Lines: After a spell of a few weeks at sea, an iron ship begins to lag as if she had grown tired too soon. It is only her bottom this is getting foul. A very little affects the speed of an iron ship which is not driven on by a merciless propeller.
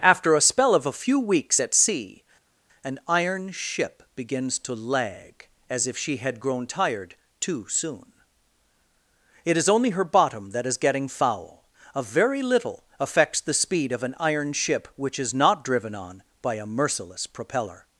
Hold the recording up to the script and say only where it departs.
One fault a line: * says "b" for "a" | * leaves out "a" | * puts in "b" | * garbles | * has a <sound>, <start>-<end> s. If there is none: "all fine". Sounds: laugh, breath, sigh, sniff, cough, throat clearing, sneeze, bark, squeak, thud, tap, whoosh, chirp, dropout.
* says "that" for "this"